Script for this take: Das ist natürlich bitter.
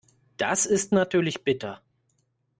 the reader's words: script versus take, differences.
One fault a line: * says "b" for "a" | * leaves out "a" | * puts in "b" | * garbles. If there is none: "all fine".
all fine